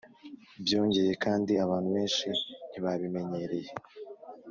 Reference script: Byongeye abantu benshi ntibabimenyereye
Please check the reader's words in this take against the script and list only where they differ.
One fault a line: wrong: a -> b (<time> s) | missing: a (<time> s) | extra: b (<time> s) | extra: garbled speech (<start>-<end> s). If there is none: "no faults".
extra: kandi (1.2 s)